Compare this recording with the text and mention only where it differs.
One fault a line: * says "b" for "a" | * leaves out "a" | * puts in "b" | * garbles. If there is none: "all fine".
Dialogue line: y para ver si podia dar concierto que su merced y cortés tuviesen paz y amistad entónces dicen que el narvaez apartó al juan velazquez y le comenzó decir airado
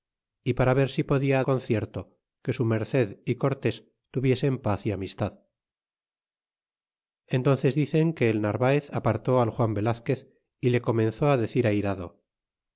* leaves out "dar"